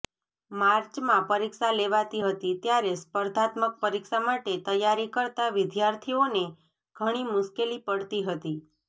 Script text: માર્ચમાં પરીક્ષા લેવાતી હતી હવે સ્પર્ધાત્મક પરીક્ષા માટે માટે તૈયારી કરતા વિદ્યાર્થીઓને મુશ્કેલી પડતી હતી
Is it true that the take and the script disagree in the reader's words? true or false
true